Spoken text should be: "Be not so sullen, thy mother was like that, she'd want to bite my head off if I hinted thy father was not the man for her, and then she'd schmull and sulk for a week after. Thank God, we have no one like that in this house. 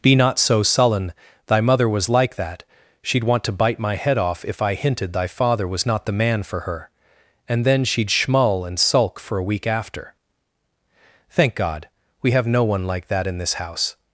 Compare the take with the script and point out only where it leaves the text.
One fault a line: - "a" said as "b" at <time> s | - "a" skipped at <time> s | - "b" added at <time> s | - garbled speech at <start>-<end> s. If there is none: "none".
none